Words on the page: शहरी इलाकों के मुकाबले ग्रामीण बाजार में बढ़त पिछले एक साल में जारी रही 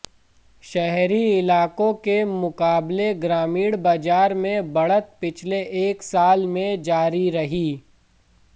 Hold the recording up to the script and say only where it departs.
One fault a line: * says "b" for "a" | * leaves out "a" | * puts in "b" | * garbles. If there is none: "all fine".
all fine